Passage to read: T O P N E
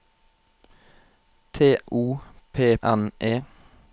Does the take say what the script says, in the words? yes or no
yes